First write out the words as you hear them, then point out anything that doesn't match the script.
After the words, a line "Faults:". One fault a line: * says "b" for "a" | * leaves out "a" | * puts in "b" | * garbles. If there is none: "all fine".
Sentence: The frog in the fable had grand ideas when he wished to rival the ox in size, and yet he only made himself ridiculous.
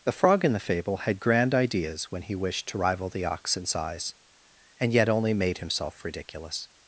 The frog in the fable had grand ideas when he wished to rival the ox in size, and yet only made himself ridiculous.
Faults:
* leaves out "he"